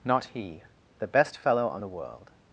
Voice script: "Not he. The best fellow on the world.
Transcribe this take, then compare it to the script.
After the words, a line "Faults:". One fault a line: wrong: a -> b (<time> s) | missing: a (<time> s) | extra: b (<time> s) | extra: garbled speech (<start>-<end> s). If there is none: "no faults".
"Not he. The best fellow on the world.
Faults:
no faults